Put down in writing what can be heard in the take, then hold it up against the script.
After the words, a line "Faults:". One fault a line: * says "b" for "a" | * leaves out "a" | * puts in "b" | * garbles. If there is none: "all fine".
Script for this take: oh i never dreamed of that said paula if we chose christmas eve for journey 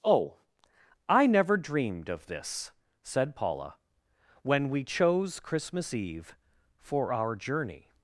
oh i never dreamed of this said paula when we chose christmas eve for our journey
Faults:
* says "this" for "that"
* says "when" for "if"
* puts in "our"